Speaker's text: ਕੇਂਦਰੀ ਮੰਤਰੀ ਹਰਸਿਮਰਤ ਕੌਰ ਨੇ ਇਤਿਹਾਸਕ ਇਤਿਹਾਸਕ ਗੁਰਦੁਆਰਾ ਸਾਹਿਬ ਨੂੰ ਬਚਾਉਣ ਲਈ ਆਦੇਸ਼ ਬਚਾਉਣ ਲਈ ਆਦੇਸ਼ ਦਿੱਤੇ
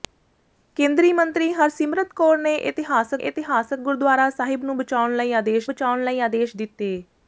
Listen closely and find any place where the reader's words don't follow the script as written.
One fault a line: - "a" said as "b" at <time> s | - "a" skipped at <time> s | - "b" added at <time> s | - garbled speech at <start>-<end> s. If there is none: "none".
none